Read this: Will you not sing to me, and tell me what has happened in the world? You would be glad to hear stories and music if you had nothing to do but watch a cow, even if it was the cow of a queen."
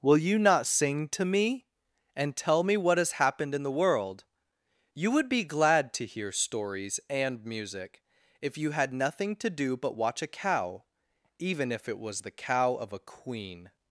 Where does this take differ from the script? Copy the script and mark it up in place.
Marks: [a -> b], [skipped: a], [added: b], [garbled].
Will you not sing to me, and tell me what has happened in the world? You would be glad to hear stories and music if you had nothing to do but watch a cow, even if it was the cow of a queen."